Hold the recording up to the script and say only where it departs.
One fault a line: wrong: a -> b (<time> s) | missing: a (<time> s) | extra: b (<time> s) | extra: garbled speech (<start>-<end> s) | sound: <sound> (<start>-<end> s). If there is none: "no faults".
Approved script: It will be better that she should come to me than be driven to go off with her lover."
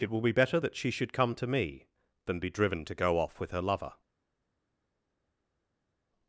no faults